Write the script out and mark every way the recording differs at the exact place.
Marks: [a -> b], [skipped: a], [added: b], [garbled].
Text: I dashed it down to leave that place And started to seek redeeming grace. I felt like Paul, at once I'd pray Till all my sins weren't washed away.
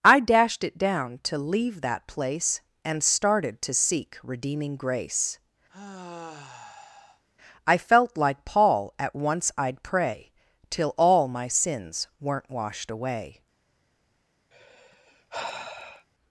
I dashed it down to leave that place And started to seek redeeming grace. I felt like Paul, at once I'd pray Till all my sins weren't washed away.